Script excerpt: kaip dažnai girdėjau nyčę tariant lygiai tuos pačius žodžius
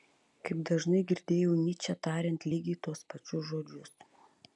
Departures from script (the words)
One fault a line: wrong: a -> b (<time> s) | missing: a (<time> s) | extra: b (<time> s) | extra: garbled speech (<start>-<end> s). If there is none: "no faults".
no faults